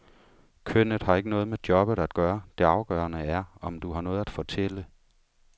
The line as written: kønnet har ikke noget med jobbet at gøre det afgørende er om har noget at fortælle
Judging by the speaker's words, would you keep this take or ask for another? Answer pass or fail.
fail